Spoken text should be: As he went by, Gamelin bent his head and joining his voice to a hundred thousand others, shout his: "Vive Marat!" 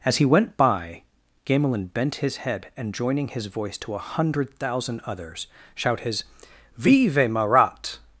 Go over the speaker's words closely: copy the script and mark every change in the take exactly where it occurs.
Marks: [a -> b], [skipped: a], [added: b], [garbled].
As he went by, Gamelin bent his head and joining his voice to a hundred thousand others, shout his: "Vive Marat!"